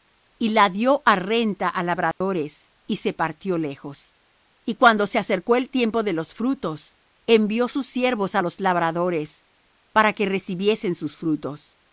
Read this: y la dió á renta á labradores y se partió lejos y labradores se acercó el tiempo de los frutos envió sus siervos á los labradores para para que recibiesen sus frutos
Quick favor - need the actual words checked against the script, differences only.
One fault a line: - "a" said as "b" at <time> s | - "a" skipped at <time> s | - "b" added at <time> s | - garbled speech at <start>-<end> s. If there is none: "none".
- "labradores" said as "cuando" at 4.8 s
- "para" skipped at 10.1 s